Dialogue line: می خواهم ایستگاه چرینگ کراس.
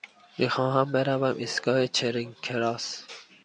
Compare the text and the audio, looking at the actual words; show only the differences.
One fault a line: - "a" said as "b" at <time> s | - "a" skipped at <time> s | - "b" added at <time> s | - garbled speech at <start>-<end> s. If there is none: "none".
- "بروم" added at 0.9 s